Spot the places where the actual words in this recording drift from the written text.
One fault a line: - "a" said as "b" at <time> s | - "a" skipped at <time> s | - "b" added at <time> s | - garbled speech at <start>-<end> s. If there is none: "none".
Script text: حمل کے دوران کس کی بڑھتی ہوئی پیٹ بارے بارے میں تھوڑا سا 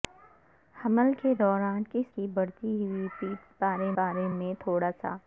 none